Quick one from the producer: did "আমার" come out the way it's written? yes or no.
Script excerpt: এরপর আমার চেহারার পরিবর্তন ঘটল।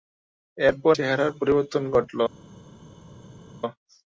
no